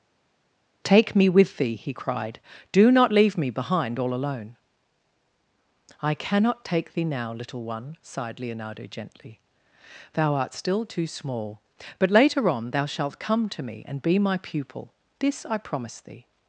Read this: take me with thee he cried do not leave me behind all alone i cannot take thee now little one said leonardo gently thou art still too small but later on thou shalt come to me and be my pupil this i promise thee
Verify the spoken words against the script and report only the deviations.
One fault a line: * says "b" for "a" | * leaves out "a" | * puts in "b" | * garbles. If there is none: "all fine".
* says "sighed" for "said"